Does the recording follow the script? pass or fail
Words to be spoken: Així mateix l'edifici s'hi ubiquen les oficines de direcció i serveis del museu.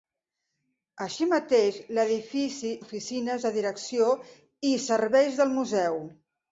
fail